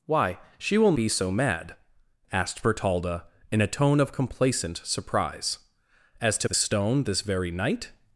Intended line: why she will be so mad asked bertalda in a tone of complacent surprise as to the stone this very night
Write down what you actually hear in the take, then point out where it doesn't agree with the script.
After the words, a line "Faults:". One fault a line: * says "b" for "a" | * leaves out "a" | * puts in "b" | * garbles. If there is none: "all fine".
why she will be so mad asked bertalda in a tone of complacent surprise as to the stone this very night
Faults:
all fine